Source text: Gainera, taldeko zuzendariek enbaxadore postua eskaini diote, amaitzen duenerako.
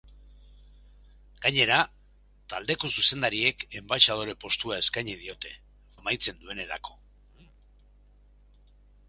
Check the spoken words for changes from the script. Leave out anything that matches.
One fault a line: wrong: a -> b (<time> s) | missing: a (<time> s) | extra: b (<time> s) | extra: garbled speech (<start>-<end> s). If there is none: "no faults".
no faults